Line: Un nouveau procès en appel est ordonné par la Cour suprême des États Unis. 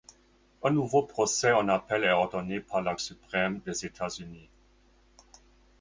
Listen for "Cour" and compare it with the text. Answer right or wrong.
wrong